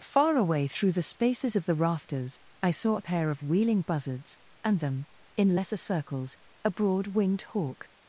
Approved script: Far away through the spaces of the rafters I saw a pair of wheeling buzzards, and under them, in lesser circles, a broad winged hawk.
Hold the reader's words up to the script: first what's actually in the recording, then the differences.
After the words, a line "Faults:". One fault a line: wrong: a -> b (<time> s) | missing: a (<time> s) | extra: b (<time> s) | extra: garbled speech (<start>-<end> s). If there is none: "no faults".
Far away through the spaces of the rafters I saw a pair of wheeling buzzards, and them, in lesser circles, a broad winged hawk.
Faults:
missing: under (4.8 s)